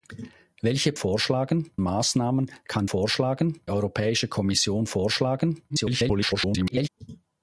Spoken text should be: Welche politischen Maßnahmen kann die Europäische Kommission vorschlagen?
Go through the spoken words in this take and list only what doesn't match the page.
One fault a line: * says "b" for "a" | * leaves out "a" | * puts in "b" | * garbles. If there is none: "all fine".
* says "vorschlagen" for "politischen"
* says "vorschlagen" for "die"
* garbles